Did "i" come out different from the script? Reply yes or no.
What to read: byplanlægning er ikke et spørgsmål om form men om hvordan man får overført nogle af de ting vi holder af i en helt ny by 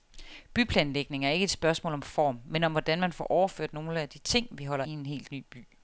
yes